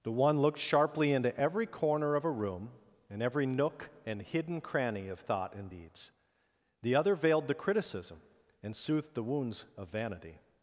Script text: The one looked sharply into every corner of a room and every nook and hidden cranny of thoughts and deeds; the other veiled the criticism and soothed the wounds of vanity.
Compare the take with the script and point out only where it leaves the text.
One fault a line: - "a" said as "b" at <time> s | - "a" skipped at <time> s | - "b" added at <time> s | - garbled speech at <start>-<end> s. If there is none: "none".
- "thoughts" said as "thought" at 5.2 s